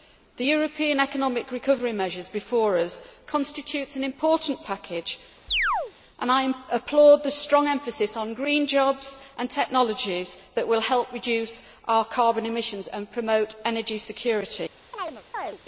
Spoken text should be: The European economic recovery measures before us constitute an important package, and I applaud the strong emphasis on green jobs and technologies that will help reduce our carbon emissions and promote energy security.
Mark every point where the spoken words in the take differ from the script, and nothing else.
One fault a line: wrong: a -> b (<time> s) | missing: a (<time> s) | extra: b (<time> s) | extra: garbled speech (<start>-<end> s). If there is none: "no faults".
no faults